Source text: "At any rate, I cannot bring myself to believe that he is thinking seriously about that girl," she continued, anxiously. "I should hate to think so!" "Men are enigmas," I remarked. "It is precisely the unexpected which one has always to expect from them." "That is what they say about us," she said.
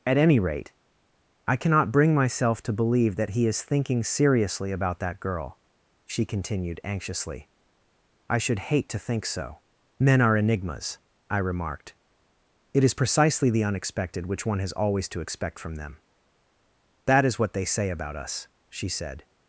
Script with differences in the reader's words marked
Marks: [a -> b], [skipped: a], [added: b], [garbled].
"At any rate, I cannot bring myself to believe that he is thinking seriously about that girl," she continued, anxiously. "I should hate to think so!" "Men are enigmas," I remarked. "It is precisely the unexpected which one has always to expect from them." "That is what they say about us," she said.